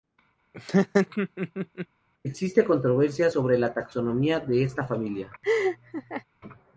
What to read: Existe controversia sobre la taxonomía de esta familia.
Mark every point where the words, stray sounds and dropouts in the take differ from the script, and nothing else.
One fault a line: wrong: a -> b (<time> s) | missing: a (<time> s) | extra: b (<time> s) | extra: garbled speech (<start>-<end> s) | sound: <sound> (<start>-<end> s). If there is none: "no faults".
sound: laugh (0.5-1.9 s)
sound: laugh (5.4-6.2 s)